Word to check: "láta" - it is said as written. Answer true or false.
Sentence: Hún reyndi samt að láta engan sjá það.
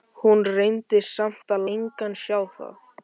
false